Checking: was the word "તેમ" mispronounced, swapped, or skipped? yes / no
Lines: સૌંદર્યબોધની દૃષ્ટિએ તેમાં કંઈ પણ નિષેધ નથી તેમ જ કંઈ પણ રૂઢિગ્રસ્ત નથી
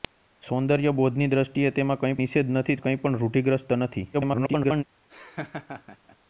yes